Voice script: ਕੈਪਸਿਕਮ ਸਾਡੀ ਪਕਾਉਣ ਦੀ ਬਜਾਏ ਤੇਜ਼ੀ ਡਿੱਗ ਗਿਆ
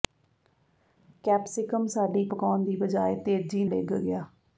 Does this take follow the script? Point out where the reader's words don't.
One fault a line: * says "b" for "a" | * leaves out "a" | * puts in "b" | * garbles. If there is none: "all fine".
all fine